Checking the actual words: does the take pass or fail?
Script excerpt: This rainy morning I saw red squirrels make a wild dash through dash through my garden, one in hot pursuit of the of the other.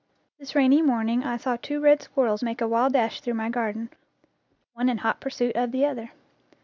fail